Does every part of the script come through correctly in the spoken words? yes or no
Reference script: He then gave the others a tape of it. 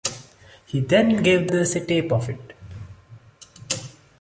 no